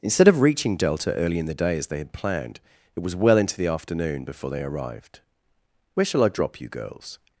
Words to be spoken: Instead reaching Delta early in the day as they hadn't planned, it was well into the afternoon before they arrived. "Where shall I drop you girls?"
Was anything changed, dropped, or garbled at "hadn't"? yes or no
yes